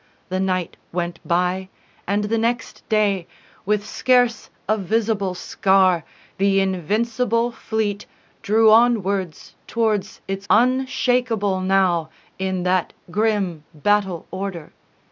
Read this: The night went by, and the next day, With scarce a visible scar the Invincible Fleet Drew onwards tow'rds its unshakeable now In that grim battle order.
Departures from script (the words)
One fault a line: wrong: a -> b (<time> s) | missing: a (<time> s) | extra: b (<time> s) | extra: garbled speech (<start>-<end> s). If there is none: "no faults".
no faults